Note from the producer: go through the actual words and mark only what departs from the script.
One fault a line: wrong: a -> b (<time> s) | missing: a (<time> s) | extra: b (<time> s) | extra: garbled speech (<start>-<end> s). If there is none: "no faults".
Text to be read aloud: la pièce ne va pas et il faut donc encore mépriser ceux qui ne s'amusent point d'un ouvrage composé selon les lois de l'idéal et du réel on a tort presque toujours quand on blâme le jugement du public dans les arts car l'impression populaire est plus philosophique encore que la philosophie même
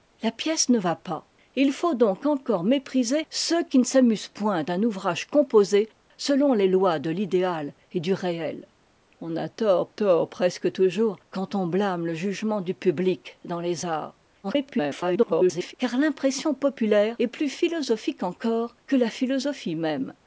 extra: tort (9.9 s)
extra: garbled speech (14.4-15.7 s)